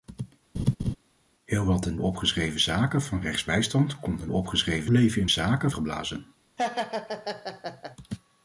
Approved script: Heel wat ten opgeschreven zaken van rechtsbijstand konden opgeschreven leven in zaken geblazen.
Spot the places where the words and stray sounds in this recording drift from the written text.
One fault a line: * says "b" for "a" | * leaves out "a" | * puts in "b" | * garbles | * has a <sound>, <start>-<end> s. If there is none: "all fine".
* has a laugh, 0.5-1.0 s
* has a laugh, 6.6-8.0 s